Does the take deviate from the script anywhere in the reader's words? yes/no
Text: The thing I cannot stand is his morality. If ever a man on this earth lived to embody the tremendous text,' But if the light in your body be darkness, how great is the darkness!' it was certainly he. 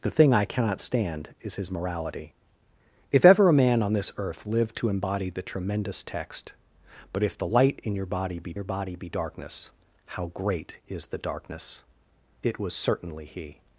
yes